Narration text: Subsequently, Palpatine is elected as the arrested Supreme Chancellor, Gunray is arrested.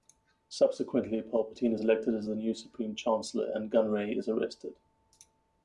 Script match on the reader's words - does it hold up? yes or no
no